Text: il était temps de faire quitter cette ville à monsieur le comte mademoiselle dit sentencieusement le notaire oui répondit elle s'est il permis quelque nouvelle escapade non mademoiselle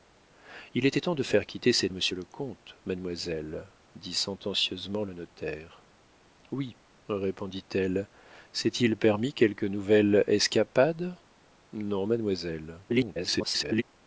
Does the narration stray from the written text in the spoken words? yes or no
yes